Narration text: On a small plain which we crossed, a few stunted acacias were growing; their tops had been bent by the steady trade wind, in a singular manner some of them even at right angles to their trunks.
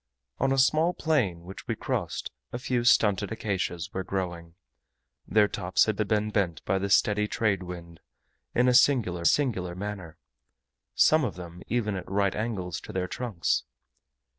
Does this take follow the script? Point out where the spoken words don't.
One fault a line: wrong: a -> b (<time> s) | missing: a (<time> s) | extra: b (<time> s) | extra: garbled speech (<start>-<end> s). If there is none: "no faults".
extra: had (6.0 s)
extra: singular (9.2 s)